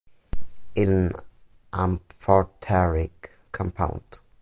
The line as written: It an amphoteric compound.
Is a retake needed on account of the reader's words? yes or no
no